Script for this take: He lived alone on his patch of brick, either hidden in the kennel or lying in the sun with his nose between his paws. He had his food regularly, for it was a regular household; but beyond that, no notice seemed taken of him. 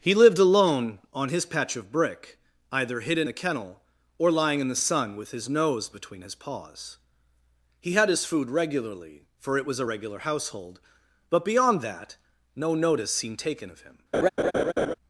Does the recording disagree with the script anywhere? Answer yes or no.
yes